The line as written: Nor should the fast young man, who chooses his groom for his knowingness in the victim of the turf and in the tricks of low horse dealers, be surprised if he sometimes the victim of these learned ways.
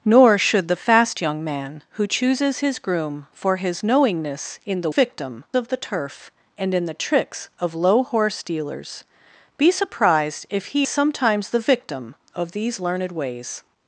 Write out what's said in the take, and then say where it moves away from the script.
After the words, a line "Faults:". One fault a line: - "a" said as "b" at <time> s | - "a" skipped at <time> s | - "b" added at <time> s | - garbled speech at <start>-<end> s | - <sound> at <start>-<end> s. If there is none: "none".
Nor should the fast young man, who chooses his groom for his knowingness in the victim of the turf and in the tricks of low horse dealers, be surprised if he sometimes the victim of these learned ways.
Faults:
none